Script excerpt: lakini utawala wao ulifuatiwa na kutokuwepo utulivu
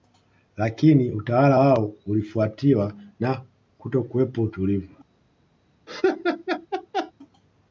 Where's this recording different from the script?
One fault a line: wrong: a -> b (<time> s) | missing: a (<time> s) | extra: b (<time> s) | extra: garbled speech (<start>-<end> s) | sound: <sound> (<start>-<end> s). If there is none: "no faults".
sound: laugh (5.9-7.1 s)